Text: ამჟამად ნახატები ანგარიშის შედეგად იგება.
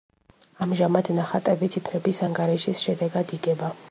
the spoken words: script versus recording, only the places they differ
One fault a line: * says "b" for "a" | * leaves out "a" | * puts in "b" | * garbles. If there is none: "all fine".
* puts in "ციფრების"